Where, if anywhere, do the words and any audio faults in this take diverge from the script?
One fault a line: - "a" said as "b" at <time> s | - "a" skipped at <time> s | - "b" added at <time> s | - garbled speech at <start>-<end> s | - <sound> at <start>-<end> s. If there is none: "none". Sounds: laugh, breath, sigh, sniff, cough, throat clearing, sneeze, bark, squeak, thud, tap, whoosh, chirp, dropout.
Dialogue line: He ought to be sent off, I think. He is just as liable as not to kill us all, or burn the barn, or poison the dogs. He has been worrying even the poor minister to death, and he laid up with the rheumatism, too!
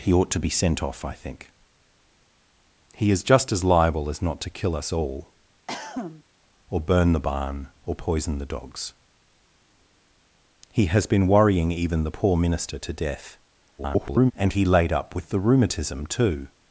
- cough at 5.7-6.2 s
- garbled speech at 13.8-14.3 s